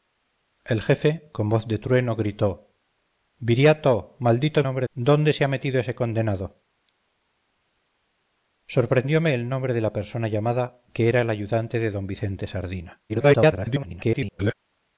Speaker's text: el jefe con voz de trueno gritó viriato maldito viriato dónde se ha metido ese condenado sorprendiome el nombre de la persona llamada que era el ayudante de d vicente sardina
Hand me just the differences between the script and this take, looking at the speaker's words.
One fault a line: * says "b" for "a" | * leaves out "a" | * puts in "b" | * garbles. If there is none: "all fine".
* says "nombre" for "viriato"
* garbles